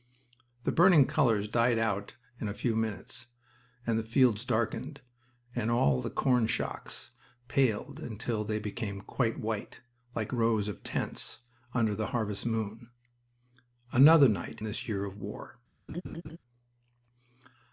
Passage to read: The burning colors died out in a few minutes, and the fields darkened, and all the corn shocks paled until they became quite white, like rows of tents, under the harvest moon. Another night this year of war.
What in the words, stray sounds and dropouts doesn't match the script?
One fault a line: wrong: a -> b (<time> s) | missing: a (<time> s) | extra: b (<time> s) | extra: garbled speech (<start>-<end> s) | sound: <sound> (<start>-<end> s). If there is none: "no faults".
sound: laugh (15.9-16.4 s)